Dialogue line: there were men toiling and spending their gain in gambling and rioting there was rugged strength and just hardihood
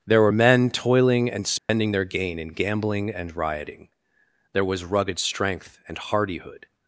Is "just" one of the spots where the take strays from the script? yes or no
yes